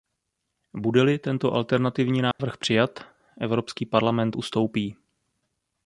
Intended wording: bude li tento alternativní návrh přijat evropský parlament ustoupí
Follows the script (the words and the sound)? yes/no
no